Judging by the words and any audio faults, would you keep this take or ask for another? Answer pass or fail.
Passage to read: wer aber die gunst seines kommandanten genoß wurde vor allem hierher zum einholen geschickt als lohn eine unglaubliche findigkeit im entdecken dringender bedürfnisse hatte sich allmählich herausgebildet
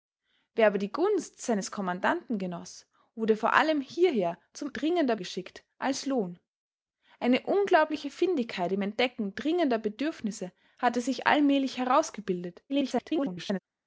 fail